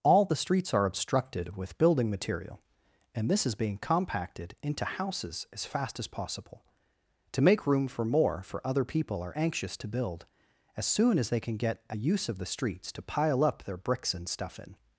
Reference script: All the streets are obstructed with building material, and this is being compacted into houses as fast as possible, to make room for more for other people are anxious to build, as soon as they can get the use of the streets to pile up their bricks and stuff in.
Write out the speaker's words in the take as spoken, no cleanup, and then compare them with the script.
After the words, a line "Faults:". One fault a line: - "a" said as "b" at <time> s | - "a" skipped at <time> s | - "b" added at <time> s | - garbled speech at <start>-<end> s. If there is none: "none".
All the streets are obstructed with building material, and this is being compacted into houses as fast as possible, to make room for more for other people are anxious to build, as soon as they can get a use of the streets to pile up their bricks and stuff in.
Faults:
- "the" said as "a" at 11.9 s